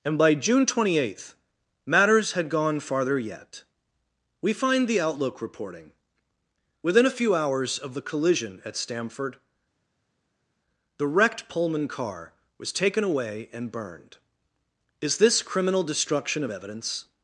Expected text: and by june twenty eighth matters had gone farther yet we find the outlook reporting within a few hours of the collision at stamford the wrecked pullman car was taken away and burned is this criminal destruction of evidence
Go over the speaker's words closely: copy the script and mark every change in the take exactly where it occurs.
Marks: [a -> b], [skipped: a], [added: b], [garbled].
and by june twenty eighth matters had gone farther yet we find the outlook reporting within a few hours of the collision at stamford the wrecked pullman car was taken away and burned is this criminal destruction of evidence